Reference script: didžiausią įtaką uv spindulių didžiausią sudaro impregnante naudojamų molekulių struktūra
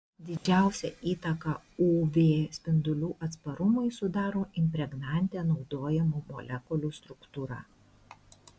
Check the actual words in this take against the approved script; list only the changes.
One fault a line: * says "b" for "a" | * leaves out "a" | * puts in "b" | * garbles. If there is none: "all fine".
* says "atsparumui" for "didžiausią"